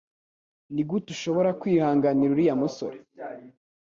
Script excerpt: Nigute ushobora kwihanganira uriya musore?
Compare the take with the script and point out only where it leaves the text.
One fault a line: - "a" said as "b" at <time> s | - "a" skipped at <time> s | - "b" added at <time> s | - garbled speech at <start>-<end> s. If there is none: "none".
none